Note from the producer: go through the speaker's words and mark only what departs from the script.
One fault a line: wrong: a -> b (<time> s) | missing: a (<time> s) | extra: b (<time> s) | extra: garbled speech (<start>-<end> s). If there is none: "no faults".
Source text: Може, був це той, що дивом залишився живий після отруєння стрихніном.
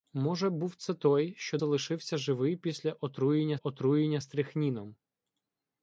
missing: дивом (1.6 s)
extra: отруєння (3.5 s)